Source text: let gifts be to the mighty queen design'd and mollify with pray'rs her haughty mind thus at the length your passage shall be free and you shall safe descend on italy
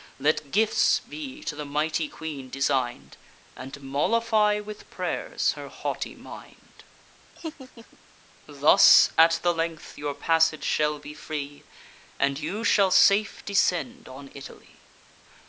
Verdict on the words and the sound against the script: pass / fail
fail